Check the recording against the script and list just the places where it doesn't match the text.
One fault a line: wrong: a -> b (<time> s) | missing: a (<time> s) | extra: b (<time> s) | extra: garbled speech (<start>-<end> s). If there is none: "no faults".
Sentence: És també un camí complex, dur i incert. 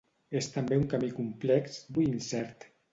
missing: dur (1.8 s)